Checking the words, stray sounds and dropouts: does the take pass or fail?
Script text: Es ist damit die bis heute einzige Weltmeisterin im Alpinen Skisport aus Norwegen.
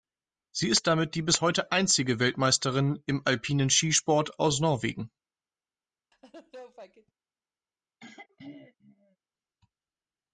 fail